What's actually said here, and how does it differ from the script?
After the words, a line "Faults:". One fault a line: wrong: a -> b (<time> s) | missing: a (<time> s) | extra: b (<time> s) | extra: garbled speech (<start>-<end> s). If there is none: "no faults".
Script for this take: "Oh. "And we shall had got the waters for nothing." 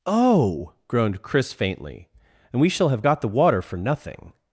"Oh!" groaned Chris faintly. "And we shall have got the water for nothing."
Faults:
extra: groaned Chris faintly (0.9 s)
wrong: had -> have (2.9 s)
wrong: waters -> water (3.3 s)